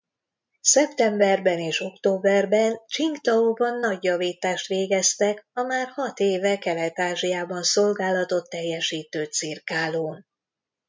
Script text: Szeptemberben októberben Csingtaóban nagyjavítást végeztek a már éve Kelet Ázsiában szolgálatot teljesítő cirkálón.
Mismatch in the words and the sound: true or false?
true